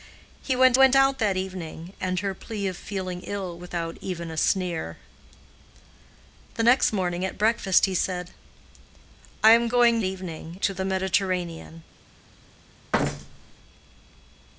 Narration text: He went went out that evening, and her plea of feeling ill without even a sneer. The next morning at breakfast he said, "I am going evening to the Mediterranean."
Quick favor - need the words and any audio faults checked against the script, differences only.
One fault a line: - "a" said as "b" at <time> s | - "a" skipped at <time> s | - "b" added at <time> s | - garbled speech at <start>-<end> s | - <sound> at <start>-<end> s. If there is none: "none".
- thud at 12.9-13.6 s